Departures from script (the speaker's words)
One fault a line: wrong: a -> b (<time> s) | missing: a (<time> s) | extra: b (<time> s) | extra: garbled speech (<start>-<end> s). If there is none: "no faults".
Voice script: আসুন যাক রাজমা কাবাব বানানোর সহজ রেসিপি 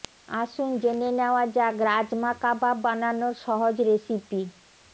extra: জেনে নেওয়া (0.8 s)